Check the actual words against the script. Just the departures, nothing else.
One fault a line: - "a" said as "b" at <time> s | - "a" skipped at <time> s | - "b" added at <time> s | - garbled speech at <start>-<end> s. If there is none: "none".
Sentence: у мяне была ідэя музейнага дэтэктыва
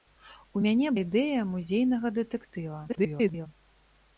- "была" skipped at 0.9 s
- garbled speech at 2.9-3.5 s